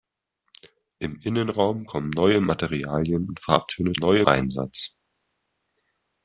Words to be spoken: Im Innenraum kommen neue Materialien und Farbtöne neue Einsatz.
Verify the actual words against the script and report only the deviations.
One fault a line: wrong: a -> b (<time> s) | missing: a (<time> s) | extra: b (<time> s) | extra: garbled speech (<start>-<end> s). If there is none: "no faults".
no faults